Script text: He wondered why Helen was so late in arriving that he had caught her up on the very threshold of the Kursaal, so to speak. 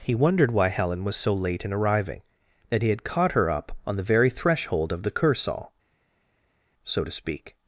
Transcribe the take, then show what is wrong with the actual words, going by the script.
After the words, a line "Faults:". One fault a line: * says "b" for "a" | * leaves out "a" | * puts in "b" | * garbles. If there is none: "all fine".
He wondered why Helen was so late in arriving that he had caught her up on the very threshold of the Kursaal, so to speak.
Faults:
all fine